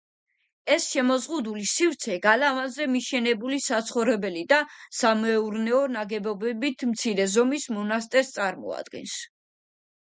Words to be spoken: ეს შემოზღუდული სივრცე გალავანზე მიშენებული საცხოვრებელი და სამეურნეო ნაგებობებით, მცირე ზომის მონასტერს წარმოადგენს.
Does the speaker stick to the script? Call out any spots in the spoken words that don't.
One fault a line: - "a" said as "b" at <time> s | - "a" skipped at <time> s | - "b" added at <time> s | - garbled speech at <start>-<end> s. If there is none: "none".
none